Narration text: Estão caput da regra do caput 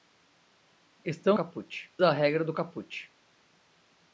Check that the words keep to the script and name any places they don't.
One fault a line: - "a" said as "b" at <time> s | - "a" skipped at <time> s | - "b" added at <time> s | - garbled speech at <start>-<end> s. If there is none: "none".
none